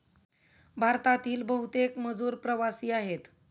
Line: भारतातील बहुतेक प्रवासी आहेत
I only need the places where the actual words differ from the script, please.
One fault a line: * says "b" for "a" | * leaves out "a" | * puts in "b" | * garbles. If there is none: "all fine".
* puts in "मजूर"